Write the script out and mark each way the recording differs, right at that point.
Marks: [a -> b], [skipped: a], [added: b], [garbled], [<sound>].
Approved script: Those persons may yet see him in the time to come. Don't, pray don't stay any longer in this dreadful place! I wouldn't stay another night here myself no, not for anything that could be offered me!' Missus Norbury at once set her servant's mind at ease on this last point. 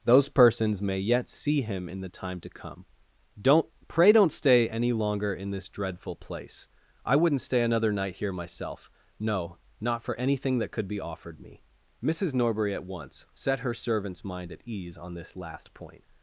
Those persons may yet see him in the time to come. Don't, pray don't stay any longer in this dreadful place! I wouldn't stay another night here myself no, not for anything that could be offered me!' Missus Norbury at once set her servant's mind at ease on this last point.